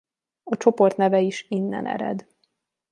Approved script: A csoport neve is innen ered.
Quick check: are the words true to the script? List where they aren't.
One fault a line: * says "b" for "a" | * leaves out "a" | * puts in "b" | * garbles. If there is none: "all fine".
all fine